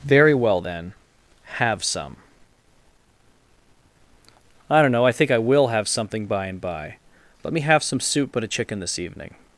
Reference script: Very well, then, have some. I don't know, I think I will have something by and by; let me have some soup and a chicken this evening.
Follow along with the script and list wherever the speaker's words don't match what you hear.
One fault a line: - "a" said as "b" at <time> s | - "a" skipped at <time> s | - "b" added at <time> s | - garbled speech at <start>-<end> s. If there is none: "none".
- "and" said as "but" at 8.3 s